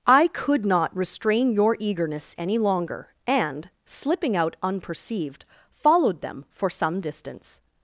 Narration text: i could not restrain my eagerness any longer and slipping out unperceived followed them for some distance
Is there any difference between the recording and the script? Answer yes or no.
yes